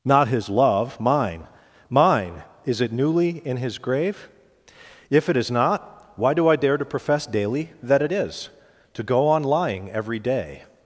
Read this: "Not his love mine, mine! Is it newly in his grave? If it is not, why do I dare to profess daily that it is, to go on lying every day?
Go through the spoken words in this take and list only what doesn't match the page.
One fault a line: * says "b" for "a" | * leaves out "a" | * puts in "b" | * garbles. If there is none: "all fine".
all fine